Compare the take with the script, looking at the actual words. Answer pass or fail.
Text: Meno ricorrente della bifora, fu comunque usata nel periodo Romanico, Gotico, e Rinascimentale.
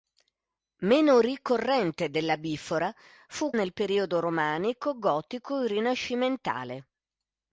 fail